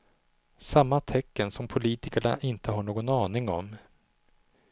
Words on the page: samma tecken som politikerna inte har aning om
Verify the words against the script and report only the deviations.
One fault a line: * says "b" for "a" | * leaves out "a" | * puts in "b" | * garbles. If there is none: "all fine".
* puts in "någon"